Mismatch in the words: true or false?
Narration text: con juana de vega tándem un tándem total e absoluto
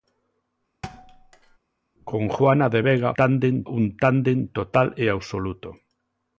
false